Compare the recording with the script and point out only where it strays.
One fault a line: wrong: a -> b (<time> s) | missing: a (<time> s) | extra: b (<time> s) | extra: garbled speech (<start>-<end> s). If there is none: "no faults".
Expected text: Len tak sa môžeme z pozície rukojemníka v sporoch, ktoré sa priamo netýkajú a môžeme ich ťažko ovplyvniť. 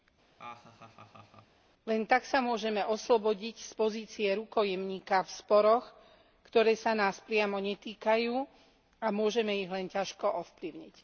extra: oslobodiť (2.8 s)
extra: nás (6.9 s)
extra: len (9.7 s)